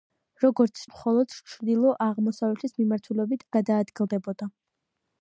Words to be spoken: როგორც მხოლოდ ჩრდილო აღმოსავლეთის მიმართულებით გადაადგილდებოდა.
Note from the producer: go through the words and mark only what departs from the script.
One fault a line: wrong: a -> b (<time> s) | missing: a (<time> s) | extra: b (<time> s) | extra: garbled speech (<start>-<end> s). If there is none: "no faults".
no faults